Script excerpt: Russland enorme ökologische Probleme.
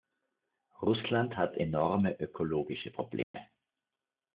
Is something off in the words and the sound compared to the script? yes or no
yes